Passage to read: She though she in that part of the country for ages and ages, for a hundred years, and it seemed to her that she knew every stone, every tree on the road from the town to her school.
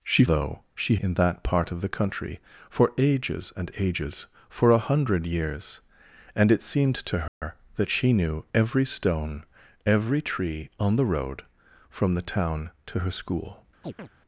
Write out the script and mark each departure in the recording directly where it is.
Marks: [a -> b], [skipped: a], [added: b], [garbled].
She though she in that part of the country for ages and ages, for a hundred years, and it seemed to her that she knew every stone, every tree on the road from the town to her school.